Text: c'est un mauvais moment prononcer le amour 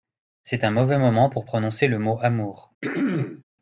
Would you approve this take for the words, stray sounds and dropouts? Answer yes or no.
no